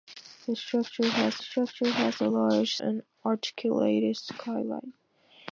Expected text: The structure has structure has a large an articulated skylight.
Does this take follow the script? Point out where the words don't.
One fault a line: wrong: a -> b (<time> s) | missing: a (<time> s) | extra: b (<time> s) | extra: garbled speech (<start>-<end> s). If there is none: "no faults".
no faults